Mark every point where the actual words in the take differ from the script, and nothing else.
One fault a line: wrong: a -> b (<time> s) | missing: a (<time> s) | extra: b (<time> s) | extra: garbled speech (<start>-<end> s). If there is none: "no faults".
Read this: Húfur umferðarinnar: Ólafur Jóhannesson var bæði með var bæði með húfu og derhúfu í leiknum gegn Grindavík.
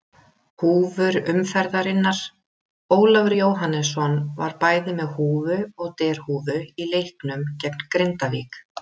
missing: var bæði með (5.1 s)